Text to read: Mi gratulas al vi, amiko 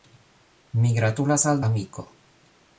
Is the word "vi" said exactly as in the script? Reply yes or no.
no